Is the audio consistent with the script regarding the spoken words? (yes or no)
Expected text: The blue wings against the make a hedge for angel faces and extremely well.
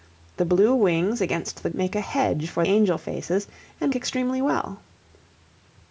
yes